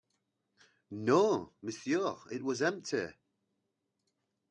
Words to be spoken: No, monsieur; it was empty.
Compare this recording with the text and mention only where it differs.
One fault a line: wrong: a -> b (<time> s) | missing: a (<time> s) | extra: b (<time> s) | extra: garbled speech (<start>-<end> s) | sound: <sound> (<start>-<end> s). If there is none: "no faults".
no faults